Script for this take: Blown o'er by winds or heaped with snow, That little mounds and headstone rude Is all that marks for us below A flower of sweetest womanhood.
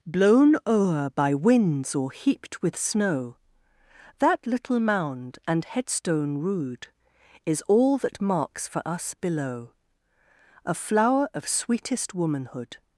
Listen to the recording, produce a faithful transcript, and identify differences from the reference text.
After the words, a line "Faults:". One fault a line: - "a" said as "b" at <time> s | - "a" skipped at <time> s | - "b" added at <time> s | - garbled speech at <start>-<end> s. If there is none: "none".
Blown o'er by winds or heaped with snow, That little mound and headstone rude Is all that marks for us below A flower of sweetest womanhood.
Faults:
- "mounds" said as "mound" at 4.8 s